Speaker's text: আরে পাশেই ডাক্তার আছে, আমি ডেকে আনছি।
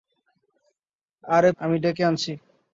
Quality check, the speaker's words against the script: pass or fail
fail